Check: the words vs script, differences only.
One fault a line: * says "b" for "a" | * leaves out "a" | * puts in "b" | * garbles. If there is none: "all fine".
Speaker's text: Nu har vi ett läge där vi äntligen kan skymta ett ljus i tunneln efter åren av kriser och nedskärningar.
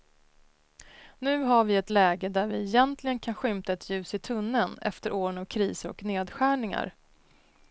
all fine